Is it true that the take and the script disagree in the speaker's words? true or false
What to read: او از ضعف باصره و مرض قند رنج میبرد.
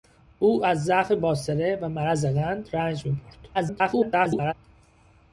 true